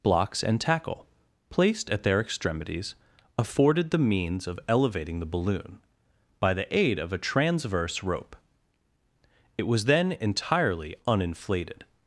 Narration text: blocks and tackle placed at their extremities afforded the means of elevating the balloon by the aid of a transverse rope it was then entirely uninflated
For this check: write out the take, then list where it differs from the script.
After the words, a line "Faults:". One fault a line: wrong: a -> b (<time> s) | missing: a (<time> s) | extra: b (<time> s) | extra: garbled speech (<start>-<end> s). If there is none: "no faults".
blocks and tackle placed at their extremities afforded the means of elevating the balloon by the aid of a transverse rope it was then entirely uninflated
Faults:
no faults